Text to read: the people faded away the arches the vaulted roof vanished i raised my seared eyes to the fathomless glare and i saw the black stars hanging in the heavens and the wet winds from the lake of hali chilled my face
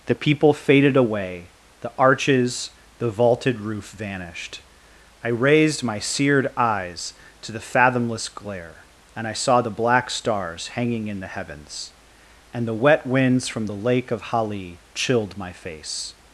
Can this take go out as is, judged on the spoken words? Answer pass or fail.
pass